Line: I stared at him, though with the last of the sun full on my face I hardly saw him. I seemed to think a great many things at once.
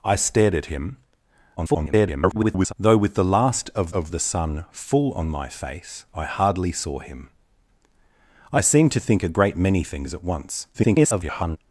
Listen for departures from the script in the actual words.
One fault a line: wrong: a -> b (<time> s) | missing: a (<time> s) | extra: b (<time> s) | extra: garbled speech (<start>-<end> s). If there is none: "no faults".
extra: garbled speech (1.6-2.7 s)
extra: of (3.9 s)
extra: garbled speech (10.7-11.6 s)